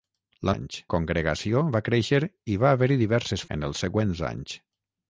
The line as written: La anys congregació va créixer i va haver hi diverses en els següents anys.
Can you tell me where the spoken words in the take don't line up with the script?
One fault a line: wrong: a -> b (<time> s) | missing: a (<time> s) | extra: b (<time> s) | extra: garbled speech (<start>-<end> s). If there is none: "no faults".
no faults